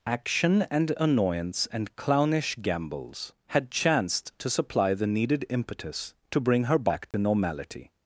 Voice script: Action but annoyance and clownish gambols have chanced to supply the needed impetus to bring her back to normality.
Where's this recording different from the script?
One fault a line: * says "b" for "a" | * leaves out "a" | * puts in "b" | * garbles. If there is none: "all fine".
* says "and" for "but"
* says "had" for "have"